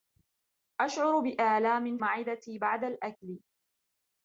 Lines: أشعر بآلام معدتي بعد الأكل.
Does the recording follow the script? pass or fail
pass